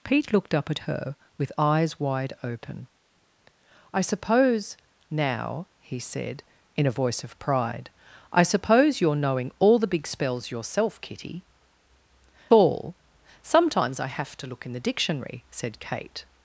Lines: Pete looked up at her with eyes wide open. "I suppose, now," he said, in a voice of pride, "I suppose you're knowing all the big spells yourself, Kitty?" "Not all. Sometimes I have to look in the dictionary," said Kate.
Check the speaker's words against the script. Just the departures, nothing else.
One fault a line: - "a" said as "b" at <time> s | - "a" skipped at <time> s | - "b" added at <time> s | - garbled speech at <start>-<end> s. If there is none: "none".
- "Not" skipped at 11.4 s